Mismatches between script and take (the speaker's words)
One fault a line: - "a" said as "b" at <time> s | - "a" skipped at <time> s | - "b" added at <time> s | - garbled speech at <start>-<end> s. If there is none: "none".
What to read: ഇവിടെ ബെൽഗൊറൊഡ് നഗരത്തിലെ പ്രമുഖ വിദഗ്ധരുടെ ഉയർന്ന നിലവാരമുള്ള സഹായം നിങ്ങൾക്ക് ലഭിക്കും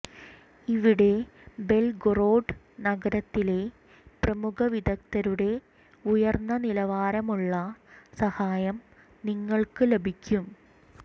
none